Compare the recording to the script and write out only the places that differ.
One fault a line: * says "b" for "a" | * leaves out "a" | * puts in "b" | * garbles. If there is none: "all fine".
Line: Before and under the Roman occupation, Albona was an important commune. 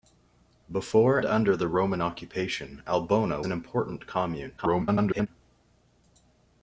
* leaves out "and"
* leaves out "was"
* garbles